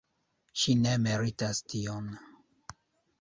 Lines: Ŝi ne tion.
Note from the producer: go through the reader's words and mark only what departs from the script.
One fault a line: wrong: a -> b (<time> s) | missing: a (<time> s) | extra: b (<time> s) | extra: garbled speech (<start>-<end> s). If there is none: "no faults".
extra: meritas (1.1 s)